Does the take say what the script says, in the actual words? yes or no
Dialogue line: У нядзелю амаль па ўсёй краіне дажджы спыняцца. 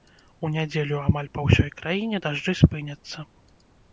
yes